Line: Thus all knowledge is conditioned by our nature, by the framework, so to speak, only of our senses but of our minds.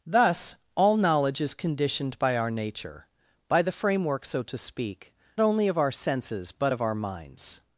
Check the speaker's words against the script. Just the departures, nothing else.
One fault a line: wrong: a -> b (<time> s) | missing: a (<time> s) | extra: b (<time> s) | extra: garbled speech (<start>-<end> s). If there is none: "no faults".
no faults